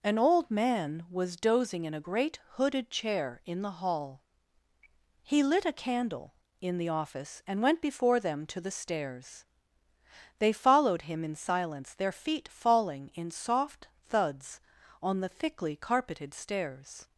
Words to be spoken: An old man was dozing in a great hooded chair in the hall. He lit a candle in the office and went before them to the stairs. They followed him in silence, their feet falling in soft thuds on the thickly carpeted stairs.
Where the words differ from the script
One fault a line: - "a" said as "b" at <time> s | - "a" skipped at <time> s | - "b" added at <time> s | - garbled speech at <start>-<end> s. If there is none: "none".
none